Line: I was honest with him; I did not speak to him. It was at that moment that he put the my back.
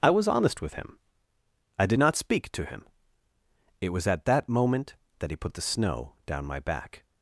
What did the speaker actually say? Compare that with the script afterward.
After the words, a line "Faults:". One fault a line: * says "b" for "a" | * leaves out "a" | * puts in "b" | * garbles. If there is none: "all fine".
I was honest with him; I did not speak to him. It was at that moment that he put the snow down my back.
Faults:
* puts in "snow down"